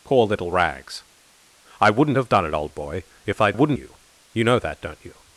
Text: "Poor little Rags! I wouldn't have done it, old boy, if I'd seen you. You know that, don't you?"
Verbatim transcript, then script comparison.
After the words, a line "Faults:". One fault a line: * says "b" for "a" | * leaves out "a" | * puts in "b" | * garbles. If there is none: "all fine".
"Poor little Rags! I wouldn't have done it, old boy, if I'd wouldn't you. You know that, don't you?"
Faults:
* says "wouldn't" for "seen"